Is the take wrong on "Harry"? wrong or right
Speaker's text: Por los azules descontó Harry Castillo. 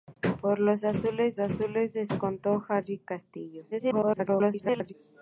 right